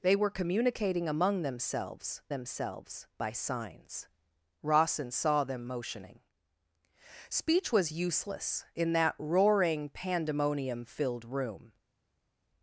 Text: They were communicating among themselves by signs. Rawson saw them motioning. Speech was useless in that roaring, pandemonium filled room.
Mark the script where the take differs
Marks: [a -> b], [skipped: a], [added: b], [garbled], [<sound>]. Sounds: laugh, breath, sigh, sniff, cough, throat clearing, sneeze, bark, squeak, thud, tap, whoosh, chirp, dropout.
They were communicating among themselves [added: themselves] by signs. Rawson saw them motioning. Speech was useless in that roaring, pandemonium filled room.